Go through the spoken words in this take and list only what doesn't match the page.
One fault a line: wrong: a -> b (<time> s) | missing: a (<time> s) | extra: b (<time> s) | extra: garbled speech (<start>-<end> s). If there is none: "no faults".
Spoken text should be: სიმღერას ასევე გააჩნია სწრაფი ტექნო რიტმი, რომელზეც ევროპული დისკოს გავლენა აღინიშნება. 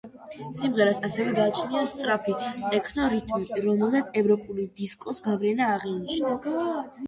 no faults